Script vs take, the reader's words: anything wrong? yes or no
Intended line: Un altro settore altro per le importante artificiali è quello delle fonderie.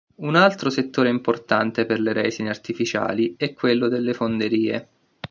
yes